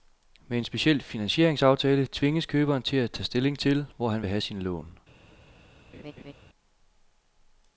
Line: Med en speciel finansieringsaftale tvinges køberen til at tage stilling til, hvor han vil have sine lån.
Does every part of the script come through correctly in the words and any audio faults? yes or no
no